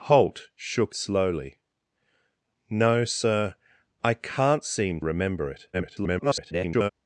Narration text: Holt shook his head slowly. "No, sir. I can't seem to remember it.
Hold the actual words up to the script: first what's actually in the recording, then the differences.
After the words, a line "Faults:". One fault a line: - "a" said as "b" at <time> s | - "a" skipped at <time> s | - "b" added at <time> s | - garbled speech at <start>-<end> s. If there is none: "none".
Holt shook slowly. "No, sir. I can't seem remember it. [garbled]
Faults:
- "his head" skipped at 0.9 s
- "to" skipped at 5.0 s
- garbled speech at 5.7-6.9 s